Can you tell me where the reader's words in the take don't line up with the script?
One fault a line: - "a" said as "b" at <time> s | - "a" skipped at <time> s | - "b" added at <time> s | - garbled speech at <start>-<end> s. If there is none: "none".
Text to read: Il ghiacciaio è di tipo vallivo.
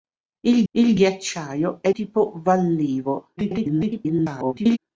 - "il" added at 0.7 s
- "di" skipped at 1.9 s
- garbled speech at 3.4-4.8 s